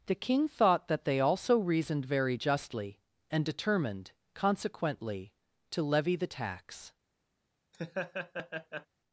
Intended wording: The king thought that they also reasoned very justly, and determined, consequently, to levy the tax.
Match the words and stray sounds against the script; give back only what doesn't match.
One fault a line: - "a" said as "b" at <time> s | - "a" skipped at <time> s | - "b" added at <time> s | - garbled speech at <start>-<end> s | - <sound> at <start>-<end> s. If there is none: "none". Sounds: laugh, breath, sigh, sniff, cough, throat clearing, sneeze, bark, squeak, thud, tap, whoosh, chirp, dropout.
- laugh at 7.7-8.9 s